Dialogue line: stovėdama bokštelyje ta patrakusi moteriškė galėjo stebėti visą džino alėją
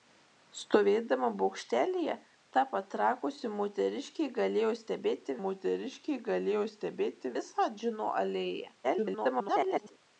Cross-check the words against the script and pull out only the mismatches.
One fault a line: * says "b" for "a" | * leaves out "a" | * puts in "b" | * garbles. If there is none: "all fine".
* puts in "moteriškė galėjo stebėti"
* garbles